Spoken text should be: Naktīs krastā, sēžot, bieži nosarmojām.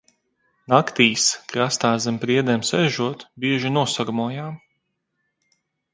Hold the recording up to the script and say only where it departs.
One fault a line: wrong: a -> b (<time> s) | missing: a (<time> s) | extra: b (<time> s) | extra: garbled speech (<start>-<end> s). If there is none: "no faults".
extra: zem priedēm (2.1 s)